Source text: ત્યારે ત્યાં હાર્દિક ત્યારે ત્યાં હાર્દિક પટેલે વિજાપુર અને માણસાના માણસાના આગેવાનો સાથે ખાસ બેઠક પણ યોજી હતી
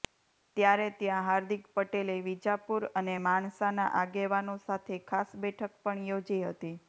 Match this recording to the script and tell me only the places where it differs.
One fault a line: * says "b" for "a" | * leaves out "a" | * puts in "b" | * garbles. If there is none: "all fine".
* leaves out "ત્યારે ત્યાં હાર્દિક"
* leaves out "માણસાના"